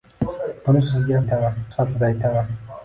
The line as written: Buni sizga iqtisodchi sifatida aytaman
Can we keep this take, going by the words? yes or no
no